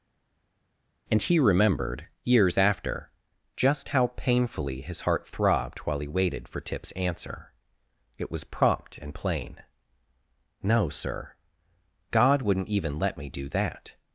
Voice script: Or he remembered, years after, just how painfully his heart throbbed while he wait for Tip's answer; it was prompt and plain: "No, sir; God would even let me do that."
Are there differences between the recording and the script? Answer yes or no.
yes